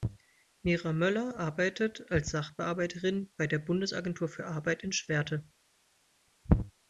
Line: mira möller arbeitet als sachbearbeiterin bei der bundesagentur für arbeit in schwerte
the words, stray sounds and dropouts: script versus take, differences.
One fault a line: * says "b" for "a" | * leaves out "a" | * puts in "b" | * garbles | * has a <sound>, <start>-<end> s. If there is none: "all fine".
all fine